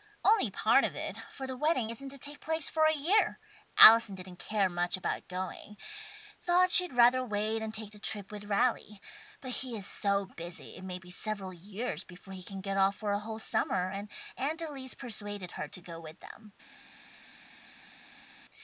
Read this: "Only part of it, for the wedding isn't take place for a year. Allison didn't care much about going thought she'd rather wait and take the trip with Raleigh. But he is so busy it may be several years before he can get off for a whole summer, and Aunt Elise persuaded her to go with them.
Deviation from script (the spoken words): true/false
true